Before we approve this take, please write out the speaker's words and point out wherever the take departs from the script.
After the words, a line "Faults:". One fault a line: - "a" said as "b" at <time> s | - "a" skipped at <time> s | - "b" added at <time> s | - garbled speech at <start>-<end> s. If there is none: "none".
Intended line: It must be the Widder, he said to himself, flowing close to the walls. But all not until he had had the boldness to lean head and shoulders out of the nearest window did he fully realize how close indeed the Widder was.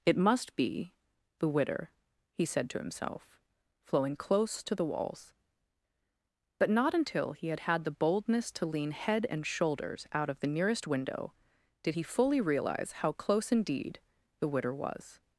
It must be the Widder, he said to himself, flowing close to the walls. But not until he had had the boldness to lean head and shoulders out of the nearest window did he fully realize how close indeed the Widder was.
Faults:
- "all" skipped at 6.7 s